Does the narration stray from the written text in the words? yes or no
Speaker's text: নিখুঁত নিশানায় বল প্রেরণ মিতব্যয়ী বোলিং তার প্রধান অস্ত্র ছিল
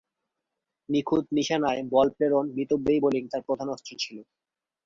no